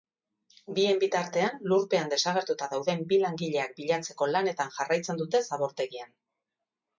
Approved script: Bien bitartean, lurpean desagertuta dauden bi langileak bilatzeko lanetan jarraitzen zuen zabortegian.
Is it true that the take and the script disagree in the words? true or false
true